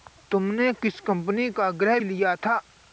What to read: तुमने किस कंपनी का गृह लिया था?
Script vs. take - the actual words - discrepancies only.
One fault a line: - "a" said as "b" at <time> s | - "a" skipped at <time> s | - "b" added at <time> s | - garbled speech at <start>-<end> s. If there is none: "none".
none